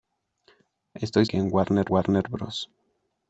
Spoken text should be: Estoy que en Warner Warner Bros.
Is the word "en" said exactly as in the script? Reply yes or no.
yes